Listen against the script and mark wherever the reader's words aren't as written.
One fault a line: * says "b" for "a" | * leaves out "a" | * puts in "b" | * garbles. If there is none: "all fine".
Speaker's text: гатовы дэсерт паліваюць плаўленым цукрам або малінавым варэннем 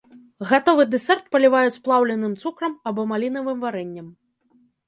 all fine